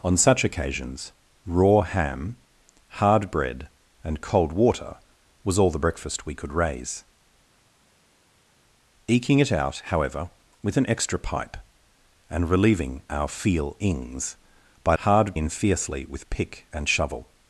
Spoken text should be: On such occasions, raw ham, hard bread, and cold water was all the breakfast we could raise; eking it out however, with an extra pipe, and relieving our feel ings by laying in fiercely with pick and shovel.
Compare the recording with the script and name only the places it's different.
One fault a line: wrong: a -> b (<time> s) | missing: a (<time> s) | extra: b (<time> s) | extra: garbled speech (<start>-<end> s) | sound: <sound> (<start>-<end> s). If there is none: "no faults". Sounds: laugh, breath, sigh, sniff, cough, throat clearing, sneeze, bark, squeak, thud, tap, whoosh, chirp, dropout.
wrong: laying -> hard (15.0 s)